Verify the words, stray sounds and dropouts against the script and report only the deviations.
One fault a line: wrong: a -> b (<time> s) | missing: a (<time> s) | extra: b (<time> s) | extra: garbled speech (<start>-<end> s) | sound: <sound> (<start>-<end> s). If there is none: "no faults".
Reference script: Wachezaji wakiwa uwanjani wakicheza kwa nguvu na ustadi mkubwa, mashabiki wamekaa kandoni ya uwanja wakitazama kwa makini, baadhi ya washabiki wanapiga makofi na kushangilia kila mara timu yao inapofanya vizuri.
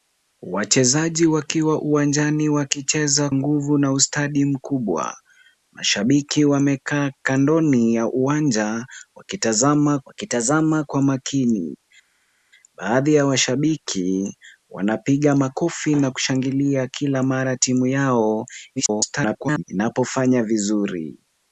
missing: kwa (3.3 s)
extra: wakitazama (10.1 s)
extra: garbled speech (18.8-19.6 s)